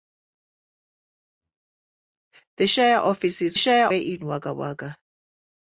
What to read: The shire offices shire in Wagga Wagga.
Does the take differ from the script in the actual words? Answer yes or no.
no